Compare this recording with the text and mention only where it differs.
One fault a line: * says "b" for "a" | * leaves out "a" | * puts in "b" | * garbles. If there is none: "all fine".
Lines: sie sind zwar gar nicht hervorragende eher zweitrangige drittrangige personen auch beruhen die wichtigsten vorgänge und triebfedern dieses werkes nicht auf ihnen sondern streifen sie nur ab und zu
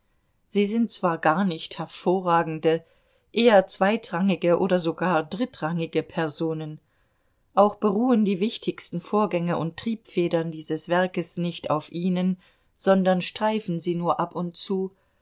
* puts in "oder sogar"